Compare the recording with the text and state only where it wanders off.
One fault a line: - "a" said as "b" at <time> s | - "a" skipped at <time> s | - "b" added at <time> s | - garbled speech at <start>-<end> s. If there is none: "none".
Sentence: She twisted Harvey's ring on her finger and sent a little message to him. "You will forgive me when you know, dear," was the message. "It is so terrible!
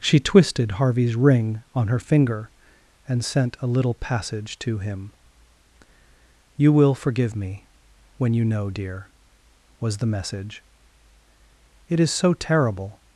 - "message" said as "passage" at 3.9 s